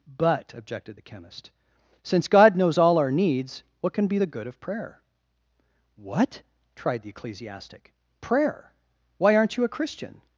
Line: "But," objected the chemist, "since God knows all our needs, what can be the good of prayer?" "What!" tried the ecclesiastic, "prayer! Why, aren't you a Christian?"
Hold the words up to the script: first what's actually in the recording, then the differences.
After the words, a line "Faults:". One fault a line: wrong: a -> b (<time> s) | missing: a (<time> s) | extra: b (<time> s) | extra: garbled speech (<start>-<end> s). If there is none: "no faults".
"But," objected the chemist, "since God knows all our needs, what can be the good of prayer?" "What!" tried the ecclesiastic, "prayer! Why, aren't you a Christian?"
Faults:
no faults